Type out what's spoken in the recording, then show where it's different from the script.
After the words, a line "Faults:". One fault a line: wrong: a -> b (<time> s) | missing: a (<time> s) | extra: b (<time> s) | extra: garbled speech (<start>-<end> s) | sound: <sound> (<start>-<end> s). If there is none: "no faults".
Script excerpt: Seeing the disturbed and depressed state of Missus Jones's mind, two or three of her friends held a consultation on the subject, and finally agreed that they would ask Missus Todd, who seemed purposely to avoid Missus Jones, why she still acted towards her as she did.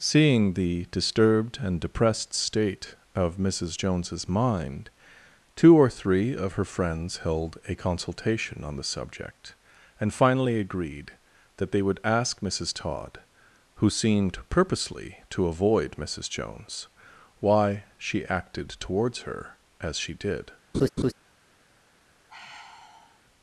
Seeing the disturbed and depressed state of Missus Jones's mind, two or three of her friends held a consultation on the subject, and finally agreed that they would ask Missus Todd, who seemed purposely to avoid Missus Jones, why she acted towards her as she did.
Faults:
missing: still (18.2 s)
sound: laugh (20.7-21.1 s)
sound: sigh (22.3-23.2 s)